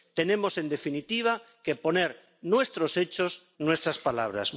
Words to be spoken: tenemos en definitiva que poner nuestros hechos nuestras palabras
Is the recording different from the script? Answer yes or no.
no